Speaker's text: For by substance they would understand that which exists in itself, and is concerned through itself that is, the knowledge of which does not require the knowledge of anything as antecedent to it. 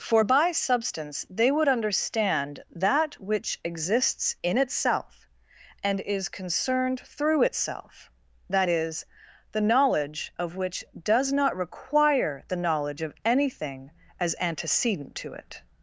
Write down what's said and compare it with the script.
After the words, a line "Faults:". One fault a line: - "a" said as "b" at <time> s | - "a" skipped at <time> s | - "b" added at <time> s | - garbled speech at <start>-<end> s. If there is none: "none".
For by substance they would understand that which exists in itself, and is concerned through itself that is, the knowledge of which does not require the knowledge of anything as antecedent to it.
Faults:
none